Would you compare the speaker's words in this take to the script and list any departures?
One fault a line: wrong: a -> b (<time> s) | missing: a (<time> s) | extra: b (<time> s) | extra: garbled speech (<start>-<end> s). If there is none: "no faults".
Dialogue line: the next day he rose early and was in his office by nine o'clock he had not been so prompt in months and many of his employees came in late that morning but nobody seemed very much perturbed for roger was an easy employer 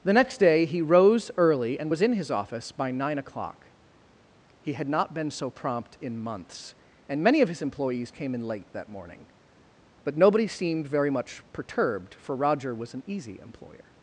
no faults